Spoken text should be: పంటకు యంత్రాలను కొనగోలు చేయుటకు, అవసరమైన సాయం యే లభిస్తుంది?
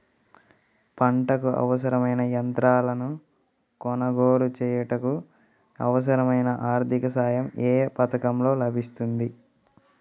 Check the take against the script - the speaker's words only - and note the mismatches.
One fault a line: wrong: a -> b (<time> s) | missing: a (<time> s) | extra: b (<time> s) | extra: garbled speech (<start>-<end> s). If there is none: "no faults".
extra: అవసరమైన (1.6 s)
extra: ఆర్థిక (6.7 s)
extra: పథకంలో (8.0 s)